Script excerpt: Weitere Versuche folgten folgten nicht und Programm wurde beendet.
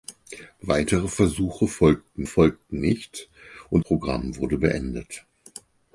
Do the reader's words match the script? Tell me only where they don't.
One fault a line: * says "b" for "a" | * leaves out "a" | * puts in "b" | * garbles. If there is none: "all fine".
all fine